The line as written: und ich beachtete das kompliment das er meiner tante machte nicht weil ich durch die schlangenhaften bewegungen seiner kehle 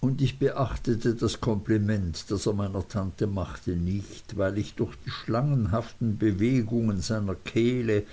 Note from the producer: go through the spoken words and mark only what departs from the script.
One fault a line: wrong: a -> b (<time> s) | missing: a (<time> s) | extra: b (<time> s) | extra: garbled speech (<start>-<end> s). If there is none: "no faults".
no faults